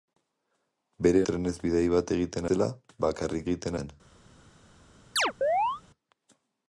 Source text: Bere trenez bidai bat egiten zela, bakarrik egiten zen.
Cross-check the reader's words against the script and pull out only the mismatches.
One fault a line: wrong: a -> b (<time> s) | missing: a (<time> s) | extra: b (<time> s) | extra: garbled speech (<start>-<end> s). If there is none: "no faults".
no faults